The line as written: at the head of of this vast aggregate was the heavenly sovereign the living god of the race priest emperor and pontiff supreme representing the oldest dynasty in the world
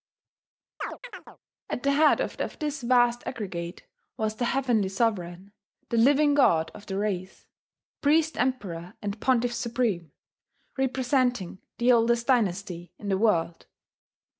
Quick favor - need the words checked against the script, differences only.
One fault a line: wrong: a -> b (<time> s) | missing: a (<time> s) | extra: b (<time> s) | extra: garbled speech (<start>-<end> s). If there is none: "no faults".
no faults